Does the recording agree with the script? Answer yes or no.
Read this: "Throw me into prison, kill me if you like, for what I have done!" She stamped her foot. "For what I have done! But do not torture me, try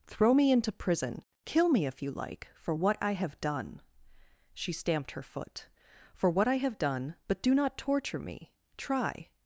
yes